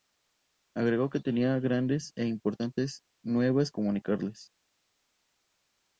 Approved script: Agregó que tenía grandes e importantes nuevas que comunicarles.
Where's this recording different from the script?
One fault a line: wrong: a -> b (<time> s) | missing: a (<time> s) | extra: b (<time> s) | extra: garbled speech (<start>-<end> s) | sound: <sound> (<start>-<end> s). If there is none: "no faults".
missing: que (3.7 s)